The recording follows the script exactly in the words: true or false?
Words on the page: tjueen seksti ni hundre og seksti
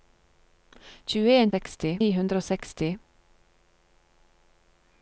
true